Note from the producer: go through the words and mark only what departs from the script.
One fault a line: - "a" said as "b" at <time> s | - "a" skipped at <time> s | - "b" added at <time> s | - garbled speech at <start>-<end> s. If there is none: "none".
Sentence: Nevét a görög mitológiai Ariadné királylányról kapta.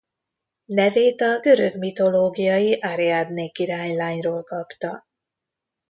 none